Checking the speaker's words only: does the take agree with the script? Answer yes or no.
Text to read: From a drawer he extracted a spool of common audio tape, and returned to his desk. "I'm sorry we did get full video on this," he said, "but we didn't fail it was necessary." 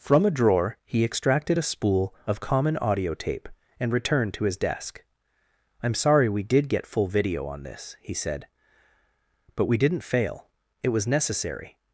yes